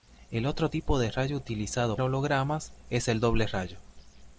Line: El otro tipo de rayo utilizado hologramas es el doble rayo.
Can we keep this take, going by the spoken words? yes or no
yes